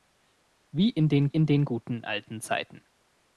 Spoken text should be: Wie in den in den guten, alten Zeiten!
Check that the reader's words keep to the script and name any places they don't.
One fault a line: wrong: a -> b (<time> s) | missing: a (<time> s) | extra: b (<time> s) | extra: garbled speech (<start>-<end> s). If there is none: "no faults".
no faults